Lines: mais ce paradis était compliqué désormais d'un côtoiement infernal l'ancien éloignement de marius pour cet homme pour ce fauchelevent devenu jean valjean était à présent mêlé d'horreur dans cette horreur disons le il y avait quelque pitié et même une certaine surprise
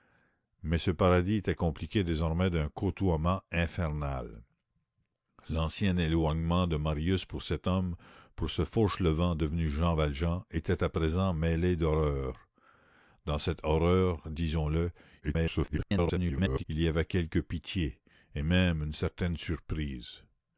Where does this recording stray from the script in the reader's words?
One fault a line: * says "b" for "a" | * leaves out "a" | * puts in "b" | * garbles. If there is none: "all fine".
* garbles